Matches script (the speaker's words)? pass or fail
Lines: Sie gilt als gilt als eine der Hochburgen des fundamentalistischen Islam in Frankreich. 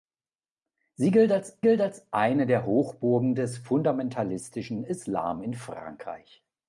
pass